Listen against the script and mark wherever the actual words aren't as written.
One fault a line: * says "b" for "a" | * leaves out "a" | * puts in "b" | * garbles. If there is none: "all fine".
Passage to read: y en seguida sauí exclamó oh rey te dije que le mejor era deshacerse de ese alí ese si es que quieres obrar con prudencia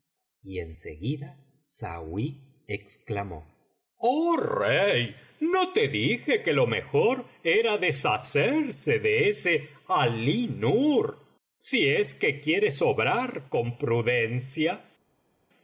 * puts in "no"
* says "lo" for "le"
* says "nur" for "ese"